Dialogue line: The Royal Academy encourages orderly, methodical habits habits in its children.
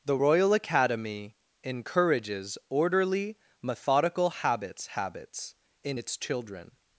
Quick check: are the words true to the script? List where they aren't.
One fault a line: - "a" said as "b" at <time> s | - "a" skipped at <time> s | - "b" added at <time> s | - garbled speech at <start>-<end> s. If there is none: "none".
none